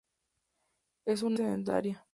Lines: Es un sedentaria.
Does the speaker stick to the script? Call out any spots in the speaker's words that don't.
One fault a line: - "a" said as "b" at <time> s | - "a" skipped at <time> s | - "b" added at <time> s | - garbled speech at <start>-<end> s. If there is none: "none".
none